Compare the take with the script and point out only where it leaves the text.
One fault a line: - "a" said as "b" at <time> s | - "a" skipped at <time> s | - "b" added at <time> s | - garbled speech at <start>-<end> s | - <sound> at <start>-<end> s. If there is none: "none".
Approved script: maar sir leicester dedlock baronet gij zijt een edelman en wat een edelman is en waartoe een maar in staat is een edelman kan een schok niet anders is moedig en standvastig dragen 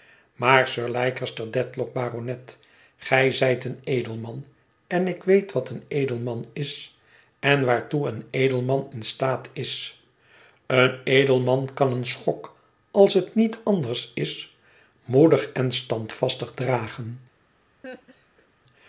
- "ik weet" added at 5.1 s
- "maar" said as "edelman" at 8.3 s
- "als het" added at 12.9 s
- laugh at 17.8-18.5 s